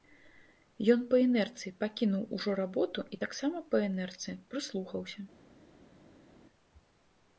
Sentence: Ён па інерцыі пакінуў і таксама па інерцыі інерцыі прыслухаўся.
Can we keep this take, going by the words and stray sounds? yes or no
no